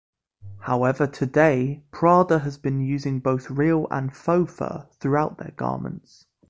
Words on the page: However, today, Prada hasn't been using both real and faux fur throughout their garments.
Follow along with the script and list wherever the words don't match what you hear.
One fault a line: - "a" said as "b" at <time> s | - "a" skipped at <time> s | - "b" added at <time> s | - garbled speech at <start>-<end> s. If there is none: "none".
- "hasn't" said as "has" at 2.4 s